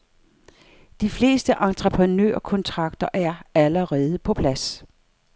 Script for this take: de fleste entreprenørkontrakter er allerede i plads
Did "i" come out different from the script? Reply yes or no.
yes